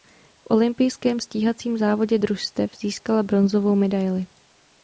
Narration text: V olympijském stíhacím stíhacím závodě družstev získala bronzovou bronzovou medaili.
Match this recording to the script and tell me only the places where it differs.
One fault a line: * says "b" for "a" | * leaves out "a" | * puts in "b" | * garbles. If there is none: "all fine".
* leaves out "stíhacím"
* leaves out "bronzovou"